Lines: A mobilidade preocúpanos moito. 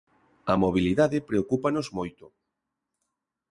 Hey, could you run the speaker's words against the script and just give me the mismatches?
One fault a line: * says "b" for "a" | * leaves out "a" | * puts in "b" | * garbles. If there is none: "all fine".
all fine